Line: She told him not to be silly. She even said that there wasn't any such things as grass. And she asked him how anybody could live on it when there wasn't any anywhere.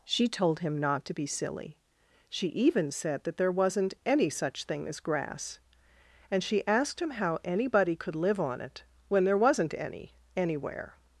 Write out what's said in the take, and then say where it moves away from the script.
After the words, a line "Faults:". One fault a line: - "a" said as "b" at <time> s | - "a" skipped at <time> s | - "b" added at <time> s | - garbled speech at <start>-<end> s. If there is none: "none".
She told him not to be silly. She even said that there wasn't any such thing as grass. And she asked him how anybody could live on it when there wasn't any anywhere.
Faults:
- "things" said as "thing" at 4.6 s